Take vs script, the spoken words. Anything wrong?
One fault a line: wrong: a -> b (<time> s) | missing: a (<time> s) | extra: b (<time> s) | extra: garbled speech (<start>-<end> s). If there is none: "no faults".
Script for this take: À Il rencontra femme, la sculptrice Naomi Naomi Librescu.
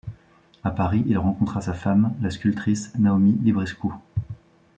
extra: Paris (0.7 s)
extra: sa (1.6 s)
missing: Naomi (3.4 s)